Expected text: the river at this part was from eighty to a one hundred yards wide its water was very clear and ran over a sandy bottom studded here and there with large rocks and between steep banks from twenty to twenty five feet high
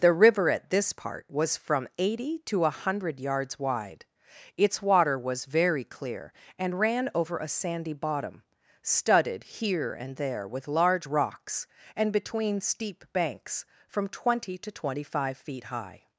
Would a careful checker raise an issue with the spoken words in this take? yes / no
yes